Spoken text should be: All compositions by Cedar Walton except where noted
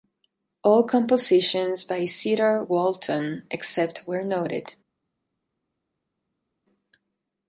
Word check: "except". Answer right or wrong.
right